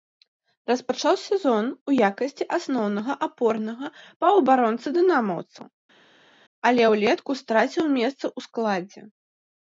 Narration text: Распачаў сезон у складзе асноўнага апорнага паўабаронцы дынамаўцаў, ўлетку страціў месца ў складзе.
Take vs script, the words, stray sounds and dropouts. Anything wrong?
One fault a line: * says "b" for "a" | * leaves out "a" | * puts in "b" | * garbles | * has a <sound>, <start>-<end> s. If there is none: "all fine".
* says "якасці" for "складзе"
* puts in "але"